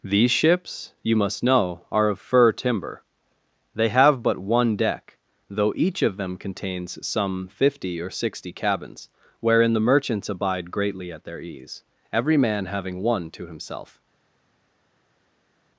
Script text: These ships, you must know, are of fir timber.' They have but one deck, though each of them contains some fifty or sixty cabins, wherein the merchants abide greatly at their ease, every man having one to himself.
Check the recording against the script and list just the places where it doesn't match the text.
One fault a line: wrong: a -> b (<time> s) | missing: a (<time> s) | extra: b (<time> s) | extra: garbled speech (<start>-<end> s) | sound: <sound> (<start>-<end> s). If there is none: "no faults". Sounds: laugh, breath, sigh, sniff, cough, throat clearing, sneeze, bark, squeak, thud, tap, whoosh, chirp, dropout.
no faults